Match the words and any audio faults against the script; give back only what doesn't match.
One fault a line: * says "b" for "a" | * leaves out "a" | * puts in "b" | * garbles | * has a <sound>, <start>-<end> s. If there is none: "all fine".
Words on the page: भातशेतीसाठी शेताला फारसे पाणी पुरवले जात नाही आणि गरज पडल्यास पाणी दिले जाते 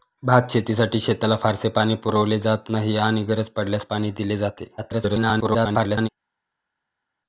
* garbles